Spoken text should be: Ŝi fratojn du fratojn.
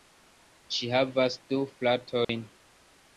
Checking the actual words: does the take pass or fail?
fail